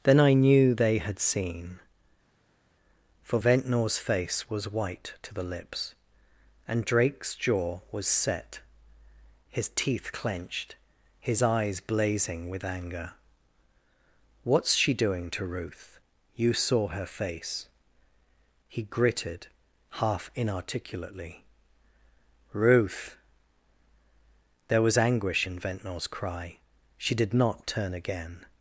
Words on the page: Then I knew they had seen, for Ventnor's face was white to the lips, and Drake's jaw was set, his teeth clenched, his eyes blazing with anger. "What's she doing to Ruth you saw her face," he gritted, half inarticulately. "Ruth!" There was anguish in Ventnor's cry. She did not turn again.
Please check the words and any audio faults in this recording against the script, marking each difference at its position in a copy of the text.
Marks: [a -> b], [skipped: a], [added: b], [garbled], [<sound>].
Then I knew they had seen, for Ventnor's face was white to the lips, and Drake's jaw was set, his teeth clenched, his eyes blazing with anger. "What's she doing to Ruth you saw her face," he gritted, half inarticulately. "Ruth!" There was anguish in Ventnor's cry. She did not turn again.